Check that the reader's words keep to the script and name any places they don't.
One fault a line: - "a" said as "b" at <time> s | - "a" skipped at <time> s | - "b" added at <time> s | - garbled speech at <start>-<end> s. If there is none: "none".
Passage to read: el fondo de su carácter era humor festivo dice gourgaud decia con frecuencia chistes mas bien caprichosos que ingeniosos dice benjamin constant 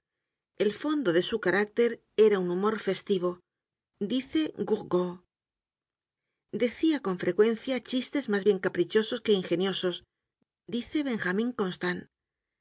- "un" added at 2.4 s